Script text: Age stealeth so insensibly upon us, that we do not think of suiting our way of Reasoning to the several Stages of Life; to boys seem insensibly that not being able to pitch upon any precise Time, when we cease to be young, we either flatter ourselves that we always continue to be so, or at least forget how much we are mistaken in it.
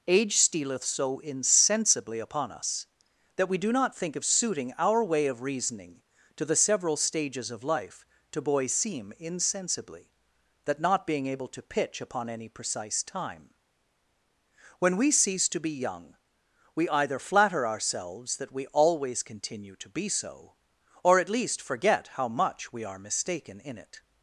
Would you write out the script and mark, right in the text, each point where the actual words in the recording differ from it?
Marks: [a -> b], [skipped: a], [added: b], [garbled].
Age stealeth so insensibly upon us, that we do not think of suiting our way of Reasoning to the several Stages of Life; to boys seem insensibly that not being able to pitch upon any precise Time, when we cease to be young, we either flatter ourselves that we always continue to be so, or at least forget how much we are mistaken in it.